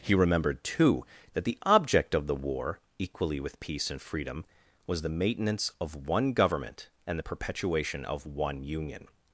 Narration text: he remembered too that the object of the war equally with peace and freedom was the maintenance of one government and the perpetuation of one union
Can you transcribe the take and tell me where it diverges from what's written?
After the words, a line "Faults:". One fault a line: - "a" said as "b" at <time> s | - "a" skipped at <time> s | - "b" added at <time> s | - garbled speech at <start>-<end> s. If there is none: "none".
he remembered too that the object of the war equally with peace and freedom was the maintenance of one government and the perpetuation of one union
Faults:
none